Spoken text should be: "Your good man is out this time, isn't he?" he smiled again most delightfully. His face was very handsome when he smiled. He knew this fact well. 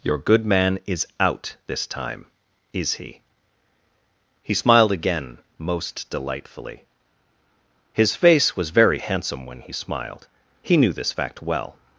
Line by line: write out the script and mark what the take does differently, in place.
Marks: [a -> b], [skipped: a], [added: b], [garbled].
"Your good man is out this time, [isn't -> is] he?" he smiled again most delightfully. His face was very handsome when he smiled. He knew this fact well.